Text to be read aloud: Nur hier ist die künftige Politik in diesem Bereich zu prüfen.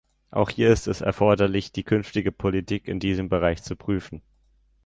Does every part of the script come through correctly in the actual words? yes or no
no